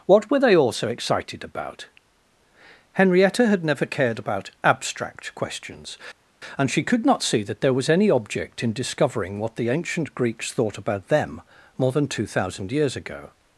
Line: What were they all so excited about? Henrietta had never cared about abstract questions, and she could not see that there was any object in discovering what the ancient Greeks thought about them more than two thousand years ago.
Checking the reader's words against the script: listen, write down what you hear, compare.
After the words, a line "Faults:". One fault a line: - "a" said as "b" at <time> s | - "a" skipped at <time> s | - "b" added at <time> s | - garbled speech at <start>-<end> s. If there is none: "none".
What were they all so excited about? Henrietta had never cared about abstract questions, and she could not see that there was any object in discovering what the ancient Greeks thought about them more than two thousand years ago.
Faults:
none